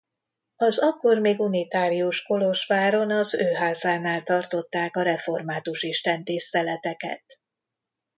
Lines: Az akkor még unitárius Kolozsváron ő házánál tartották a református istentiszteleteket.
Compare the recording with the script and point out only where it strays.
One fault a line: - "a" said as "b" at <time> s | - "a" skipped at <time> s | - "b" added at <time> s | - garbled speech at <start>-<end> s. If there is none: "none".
- "az" added at 3.1 s